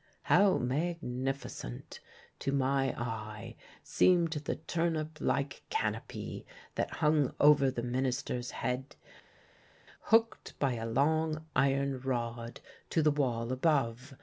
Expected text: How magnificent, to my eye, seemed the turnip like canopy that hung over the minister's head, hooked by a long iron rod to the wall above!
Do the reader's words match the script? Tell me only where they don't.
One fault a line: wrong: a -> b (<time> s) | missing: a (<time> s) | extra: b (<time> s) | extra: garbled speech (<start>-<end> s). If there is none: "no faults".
no faults